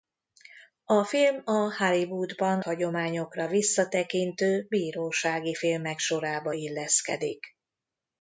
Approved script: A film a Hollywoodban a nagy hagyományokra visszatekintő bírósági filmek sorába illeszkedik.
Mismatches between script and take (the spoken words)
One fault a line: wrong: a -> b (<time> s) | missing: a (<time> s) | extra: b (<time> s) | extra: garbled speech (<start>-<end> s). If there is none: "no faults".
missing: a nagy (2.6 s)